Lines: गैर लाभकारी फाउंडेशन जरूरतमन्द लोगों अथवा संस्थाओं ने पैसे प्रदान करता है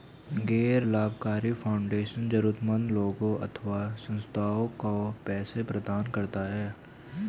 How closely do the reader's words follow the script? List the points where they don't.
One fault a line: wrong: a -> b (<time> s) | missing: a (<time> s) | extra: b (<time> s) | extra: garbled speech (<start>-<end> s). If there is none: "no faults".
wrong: ने -> को (4.8 s)